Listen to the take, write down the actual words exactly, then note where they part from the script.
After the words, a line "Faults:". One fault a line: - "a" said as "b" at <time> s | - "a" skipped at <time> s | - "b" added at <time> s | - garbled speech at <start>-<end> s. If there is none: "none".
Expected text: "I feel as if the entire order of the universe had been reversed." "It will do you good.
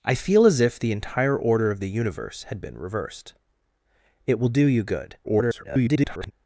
"I feel as if the entire order of the universe had been reversed." "It will do you good. [garbled]
Faults:
- garbled speech at 5.2-6.3 s